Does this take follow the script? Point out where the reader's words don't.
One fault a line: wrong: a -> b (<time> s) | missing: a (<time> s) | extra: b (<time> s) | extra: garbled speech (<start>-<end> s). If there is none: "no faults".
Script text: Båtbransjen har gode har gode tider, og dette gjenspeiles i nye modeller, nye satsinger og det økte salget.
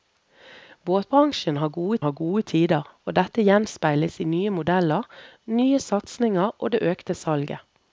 no faults